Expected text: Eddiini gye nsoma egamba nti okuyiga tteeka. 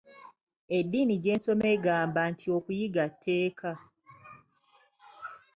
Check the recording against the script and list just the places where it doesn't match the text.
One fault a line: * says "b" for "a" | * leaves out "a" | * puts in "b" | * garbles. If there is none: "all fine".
all fine